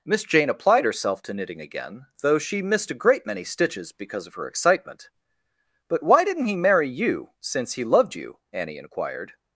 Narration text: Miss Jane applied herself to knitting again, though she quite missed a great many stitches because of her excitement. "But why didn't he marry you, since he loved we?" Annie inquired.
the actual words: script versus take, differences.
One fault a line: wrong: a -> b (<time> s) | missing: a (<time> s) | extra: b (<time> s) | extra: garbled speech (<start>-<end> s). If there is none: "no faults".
missing: quite (2.6 s)
wrong: we -> you (8.2 s)